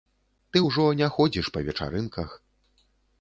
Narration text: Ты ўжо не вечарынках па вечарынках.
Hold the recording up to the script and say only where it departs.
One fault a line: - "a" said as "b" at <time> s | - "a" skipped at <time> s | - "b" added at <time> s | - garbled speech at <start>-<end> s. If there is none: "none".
- "вечарынках" said as "ходзіш" at 1.2 s